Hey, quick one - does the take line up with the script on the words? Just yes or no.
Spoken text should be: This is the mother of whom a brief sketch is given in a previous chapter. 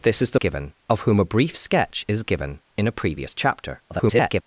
no